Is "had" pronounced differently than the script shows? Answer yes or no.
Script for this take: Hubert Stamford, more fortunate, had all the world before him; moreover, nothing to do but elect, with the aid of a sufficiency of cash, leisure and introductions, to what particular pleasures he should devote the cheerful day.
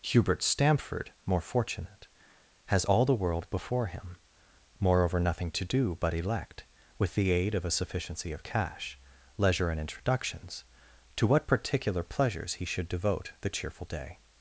yes